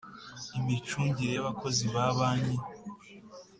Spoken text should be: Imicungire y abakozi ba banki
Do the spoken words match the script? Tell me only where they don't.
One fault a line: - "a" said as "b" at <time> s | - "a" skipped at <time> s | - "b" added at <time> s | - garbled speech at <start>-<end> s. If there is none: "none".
none